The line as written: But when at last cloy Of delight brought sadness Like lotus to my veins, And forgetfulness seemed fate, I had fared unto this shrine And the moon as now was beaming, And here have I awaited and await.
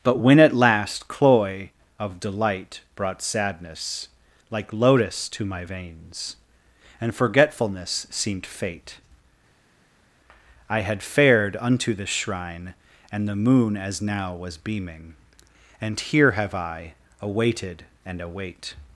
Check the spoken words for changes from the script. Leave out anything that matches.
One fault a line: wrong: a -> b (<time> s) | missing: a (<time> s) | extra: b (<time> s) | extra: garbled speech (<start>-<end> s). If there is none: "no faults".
no faults